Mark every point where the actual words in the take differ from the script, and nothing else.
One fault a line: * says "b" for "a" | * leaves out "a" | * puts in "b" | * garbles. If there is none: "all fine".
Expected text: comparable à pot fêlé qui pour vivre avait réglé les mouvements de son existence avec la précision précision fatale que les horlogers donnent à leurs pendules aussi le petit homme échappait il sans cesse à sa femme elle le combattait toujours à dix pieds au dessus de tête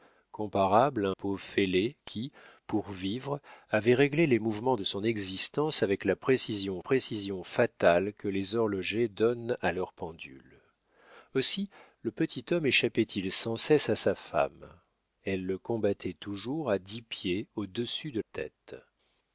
all fine